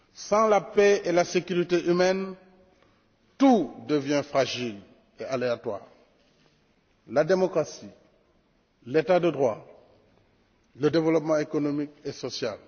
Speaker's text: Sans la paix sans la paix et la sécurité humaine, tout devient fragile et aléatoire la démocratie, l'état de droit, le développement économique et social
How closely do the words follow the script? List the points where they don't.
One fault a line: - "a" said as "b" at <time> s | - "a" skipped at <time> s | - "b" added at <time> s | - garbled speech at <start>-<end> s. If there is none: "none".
- "sans la paix" skipped at 1.0 s